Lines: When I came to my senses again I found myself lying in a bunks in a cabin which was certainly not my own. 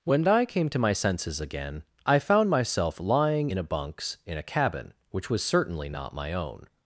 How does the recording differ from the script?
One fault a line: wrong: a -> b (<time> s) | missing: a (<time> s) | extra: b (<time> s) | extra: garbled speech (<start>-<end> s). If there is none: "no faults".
no faults